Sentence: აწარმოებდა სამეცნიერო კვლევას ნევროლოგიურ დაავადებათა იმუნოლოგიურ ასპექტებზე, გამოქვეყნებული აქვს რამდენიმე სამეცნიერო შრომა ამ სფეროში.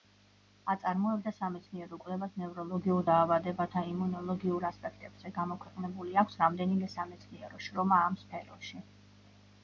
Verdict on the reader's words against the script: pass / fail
pass